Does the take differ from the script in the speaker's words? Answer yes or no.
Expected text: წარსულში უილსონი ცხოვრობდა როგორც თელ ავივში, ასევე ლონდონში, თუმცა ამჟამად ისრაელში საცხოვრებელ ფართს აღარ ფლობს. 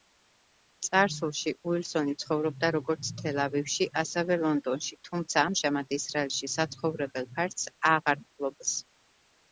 no